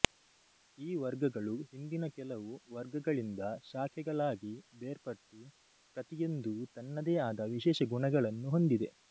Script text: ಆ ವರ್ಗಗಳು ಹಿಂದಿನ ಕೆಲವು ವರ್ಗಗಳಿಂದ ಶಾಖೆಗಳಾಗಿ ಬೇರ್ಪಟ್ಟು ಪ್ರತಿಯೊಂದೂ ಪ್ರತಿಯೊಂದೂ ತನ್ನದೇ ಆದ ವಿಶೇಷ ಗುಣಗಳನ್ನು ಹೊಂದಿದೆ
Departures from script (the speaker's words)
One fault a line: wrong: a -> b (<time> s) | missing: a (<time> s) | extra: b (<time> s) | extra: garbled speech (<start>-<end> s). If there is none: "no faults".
wrong: ಆ -> ಈ (0.8 s)
missing: ಪ್ರತಿಯೊಂದೂ (6.5 s)